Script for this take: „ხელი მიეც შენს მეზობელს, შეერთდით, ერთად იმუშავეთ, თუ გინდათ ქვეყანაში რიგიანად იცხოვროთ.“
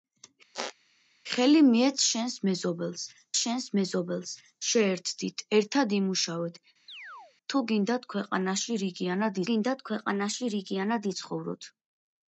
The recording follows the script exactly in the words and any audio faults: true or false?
false